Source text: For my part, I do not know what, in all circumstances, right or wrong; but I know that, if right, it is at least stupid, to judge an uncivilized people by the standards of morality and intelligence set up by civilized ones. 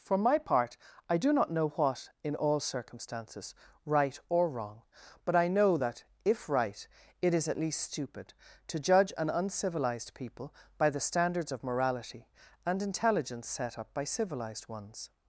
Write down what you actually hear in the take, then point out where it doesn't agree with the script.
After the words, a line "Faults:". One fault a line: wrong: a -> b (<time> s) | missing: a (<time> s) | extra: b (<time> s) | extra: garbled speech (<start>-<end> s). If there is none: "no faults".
For my part, I do not know what, in all circumstances, right or wrong; but I know that, if right, it is at least stupid, to judge an uncivilized people by the standards of morality and intelligence set up by civilized ones.
Faults:
no faults